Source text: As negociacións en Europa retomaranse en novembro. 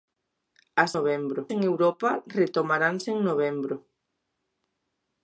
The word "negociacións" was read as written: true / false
false